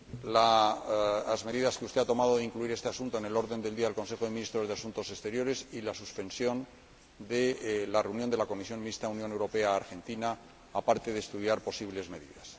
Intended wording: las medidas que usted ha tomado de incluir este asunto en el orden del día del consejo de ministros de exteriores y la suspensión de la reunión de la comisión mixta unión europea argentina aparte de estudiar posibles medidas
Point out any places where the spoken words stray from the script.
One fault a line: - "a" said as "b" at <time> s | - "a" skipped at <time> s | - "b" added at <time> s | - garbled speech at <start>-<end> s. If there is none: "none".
- "asuntos" added at 4.7 s